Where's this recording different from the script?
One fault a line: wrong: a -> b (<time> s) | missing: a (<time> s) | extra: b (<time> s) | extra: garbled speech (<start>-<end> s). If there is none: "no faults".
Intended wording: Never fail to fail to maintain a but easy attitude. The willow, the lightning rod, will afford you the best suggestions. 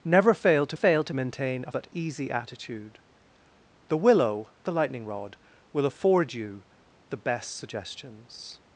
no faults